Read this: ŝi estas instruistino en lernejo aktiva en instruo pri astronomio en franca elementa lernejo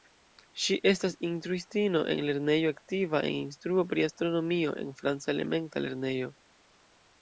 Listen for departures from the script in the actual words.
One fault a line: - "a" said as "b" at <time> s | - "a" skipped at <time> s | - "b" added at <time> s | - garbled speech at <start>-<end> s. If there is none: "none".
none